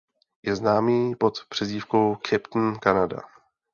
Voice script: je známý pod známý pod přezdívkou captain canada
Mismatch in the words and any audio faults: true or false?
true